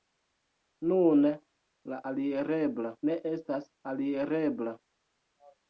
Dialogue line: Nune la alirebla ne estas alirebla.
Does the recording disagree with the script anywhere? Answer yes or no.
no